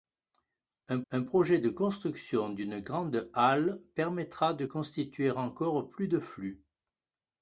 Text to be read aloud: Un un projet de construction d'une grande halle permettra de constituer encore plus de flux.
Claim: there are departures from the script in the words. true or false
false